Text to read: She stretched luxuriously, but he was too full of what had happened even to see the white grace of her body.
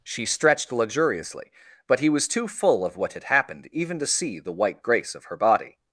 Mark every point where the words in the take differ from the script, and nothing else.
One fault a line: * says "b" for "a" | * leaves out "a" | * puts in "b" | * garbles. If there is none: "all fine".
all fine